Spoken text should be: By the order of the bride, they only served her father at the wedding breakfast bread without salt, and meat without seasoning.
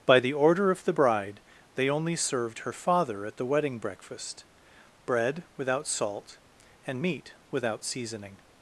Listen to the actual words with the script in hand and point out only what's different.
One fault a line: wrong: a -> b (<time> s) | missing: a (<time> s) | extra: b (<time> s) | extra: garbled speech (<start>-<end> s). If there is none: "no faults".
no faults